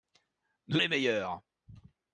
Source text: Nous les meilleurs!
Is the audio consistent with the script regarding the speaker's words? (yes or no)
yes